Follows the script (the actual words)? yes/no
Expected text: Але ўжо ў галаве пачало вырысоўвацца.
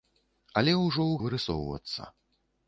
no